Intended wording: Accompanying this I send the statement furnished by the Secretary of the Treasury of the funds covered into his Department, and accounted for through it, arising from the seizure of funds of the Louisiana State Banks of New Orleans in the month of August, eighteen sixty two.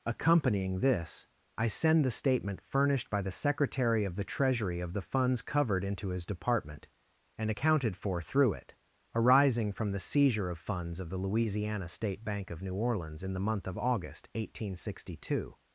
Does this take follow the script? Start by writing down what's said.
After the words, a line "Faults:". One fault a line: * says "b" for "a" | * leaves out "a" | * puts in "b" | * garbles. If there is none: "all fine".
Accompanying this I send the statement furnished by the Secretary of the Treasury of the funds covered into his Department, and accounted for through it, arising from the seizure of funds of the Louisiana State Bank of New Orleans in the month of August, eighteen sixty two.
Faults:
* says "Bank" for "Banks"